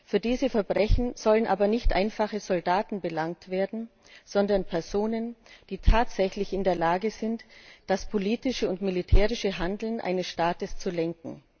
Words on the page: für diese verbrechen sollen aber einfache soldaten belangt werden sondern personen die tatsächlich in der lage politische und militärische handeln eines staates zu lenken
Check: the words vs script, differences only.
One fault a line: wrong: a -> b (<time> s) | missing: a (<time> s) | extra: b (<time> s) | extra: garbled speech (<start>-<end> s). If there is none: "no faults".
extra: nicht (1.7 s)
extra: sind das (7.1 s)